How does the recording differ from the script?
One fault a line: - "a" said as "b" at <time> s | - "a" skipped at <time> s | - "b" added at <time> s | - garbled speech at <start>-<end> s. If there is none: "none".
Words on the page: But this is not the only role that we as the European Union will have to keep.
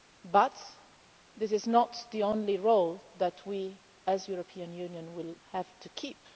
none